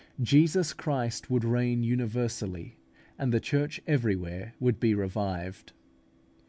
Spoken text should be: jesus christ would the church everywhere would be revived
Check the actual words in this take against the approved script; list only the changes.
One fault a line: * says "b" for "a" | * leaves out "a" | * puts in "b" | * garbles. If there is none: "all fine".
* puts in "reign universally and"